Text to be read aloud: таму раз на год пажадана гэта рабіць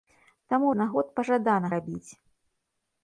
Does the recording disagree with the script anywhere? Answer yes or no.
yes